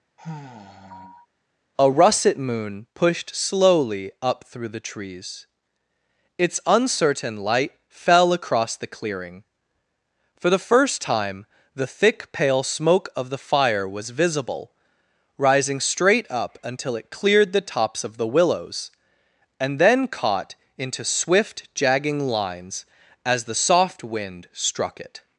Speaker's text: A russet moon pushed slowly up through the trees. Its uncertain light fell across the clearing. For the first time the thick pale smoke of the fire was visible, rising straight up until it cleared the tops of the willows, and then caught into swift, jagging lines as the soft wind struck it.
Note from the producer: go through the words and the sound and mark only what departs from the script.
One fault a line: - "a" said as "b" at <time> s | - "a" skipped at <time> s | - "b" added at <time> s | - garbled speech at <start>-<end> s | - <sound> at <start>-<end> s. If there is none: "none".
- sigh at 0.2-1.3 s